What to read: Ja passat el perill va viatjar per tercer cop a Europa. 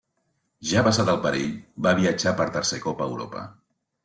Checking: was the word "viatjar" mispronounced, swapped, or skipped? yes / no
no